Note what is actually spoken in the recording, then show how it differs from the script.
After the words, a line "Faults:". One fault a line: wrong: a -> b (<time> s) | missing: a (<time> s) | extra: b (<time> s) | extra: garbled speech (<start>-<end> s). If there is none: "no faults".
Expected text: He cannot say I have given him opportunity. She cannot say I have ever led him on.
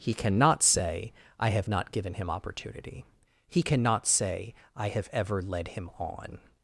He cannot say I have not given him opportunity. He cannot say I have ever led him on.
Faults:
extra: not (1.7 s)
wrong: She -> He (3.5 s)